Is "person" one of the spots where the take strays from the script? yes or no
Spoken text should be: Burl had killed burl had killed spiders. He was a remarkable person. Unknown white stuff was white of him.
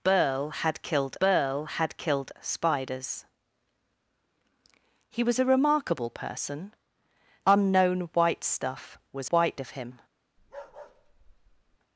no